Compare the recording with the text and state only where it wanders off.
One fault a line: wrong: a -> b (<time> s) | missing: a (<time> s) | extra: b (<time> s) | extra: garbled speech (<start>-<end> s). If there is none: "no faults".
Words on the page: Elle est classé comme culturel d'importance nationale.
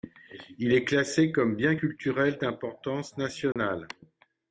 wrong: Elle -> Il (0.6 s)
extra: bien (1.6 s)